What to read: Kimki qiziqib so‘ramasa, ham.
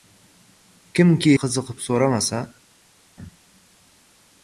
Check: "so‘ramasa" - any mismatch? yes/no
no